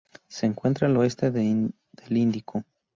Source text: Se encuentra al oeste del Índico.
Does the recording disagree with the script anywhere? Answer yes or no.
no